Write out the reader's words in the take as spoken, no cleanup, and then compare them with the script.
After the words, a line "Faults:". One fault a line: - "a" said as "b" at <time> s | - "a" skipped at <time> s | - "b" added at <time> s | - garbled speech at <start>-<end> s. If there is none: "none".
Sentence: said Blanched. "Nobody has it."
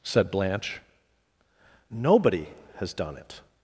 said Blanche. "Nobody has done it."
Faults:
- "Blanched" said as "Blanche" at 0.3 s
- "done" added at 2.9 s